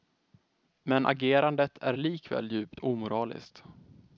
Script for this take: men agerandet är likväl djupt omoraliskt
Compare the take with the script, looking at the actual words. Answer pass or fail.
pass